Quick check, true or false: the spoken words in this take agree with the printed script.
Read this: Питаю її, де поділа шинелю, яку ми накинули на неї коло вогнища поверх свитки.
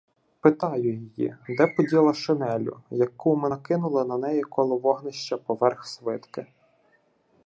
true